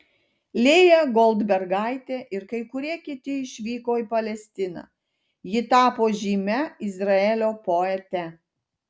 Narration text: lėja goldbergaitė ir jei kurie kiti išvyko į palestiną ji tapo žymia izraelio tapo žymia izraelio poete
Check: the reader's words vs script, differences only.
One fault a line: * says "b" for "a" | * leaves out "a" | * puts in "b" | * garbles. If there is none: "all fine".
* says "kai" for "jei"
* leaves out "tapo žymia izraelio"